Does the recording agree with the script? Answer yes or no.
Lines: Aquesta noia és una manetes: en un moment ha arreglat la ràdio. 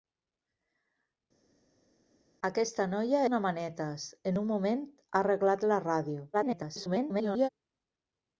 no